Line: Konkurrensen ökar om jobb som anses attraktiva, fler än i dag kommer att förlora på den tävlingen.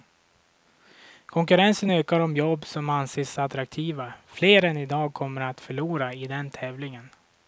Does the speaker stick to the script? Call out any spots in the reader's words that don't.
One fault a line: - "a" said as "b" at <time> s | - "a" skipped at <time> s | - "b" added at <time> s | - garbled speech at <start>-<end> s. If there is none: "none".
- "på" said as "i" at 6.1 s